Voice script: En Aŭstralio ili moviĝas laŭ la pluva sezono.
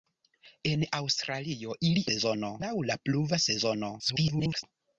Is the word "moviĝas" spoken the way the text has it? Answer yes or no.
no